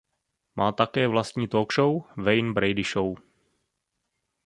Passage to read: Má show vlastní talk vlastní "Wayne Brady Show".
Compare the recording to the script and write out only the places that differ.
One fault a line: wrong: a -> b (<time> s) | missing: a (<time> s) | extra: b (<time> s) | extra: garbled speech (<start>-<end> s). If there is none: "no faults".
wrong: show -> také (0.7 s)
wrong: vlastní -> show (1.7 s)